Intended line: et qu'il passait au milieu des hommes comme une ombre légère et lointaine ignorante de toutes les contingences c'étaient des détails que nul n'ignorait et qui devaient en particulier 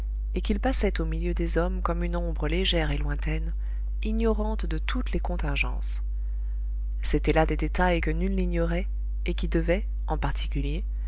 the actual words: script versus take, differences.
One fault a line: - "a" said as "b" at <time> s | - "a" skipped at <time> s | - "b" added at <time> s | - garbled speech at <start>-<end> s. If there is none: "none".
- "là" added at 7.3 s